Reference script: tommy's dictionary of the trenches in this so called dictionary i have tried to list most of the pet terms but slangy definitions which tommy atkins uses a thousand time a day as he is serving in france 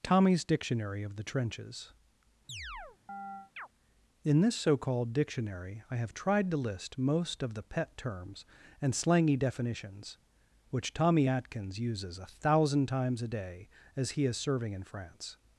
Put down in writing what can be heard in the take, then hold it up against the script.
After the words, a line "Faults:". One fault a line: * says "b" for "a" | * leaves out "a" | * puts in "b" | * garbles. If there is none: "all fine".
tommy's dictionary of the trenches in this so called dictionary i have tried to list most of the pet terms and slangy definitions which tommy atkins uses a thousand times a day as he is serving in france
Faults:
* says "and" for "but"
* says "times" for "time"